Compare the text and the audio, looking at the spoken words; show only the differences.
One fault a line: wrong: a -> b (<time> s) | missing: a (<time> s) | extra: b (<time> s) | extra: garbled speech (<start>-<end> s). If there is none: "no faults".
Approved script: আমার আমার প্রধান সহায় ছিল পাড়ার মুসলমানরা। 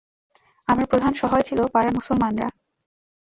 missing: আমার (0.8 s)